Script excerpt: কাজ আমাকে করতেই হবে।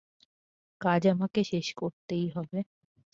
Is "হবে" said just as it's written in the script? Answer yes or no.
yes